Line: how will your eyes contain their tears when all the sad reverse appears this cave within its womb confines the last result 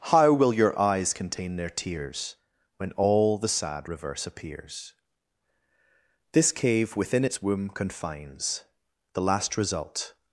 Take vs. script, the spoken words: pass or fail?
pass